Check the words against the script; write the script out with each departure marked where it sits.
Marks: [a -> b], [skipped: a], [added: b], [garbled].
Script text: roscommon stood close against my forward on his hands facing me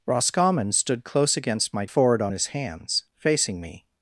roscommon stood close against my forward on his hands facing me